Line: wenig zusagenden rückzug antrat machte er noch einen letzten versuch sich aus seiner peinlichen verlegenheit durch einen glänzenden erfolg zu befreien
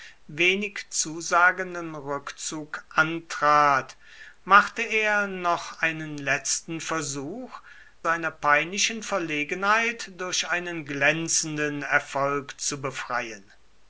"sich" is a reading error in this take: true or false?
true